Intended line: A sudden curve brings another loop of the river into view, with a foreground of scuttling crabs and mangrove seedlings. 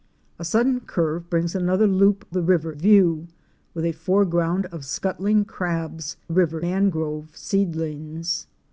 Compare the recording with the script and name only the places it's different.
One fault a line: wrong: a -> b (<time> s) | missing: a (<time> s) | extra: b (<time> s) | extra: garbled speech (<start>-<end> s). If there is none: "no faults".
missing: of (2.3 s)
missing: into (2.7 s)
wrong: and -> river (6.3 s)